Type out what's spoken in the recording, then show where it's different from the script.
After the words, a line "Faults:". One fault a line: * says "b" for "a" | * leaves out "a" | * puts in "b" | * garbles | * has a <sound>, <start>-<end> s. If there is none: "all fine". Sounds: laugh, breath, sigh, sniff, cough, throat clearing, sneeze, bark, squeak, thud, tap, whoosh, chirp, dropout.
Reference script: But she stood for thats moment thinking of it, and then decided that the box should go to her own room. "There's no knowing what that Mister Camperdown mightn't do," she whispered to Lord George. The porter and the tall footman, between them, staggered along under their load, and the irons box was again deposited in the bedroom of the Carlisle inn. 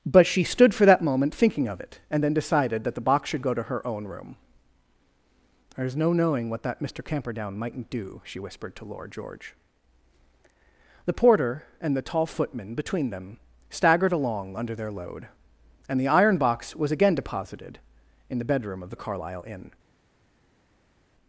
But she stood for that moment thinking of it, and then decided that the box should go to her own room. "There's no knowing what that Mister Camperdown mightn't do," she whispered to Lord George. The porter and the tall footman, between them, staggered along under their load, and the iron box was again deposited in the bedroom of the Carlisle inn.
Faults:
* says "that" for "thats"
* says "iron" for "irons"